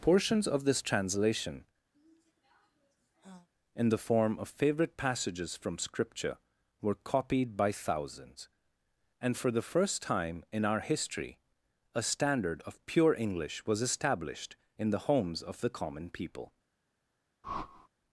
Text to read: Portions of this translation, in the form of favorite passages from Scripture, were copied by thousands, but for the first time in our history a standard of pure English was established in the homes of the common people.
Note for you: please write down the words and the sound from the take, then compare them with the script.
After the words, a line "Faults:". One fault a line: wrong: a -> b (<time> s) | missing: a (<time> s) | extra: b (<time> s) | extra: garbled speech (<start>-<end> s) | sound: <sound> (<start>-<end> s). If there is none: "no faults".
Portions of this translation, in the form of favorite passages from Scripture, were copied by thousands, and for the first time in our history a standard of pure English was established in the homes of the common people.
Faults:
sound: sigh (1.9-3.5 s)
wrong: but -> and (9.2 s)
sound: whoosh (17.4-17.9 s)